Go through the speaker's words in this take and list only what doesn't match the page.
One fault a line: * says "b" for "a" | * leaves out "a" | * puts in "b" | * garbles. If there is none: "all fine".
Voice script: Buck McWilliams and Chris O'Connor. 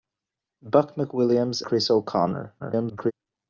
* leaves out "and"
* garbles